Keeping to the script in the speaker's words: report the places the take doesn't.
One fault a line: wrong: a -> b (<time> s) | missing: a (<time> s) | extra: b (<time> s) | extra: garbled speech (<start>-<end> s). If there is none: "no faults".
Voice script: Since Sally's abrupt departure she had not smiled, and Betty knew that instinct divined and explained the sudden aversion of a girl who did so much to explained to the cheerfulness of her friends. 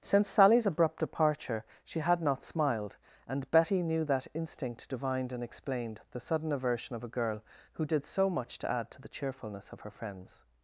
wrong: explained -> add (8.7 s)